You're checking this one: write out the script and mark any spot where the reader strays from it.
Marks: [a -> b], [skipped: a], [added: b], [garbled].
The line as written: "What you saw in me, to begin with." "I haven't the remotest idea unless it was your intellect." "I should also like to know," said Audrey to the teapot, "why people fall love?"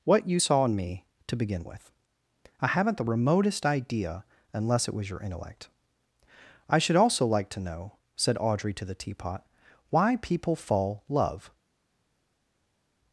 "What you saw in me, to begin with." "I haven't the remotest idea unless it was your intellect." "I should also like to know," said Audrey to the teapot, "why people fall love?"